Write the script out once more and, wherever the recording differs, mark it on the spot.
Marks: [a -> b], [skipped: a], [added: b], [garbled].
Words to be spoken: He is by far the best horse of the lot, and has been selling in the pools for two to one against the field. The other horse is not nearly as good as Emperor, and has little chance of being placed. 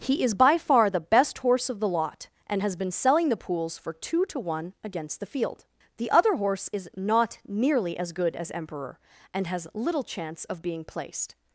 He is by far the best horse of the lot, and has been selling [skipped: in] the pools for two to one against the field. The other horse is not nearly as good as Emperor, and has little chance of being placed.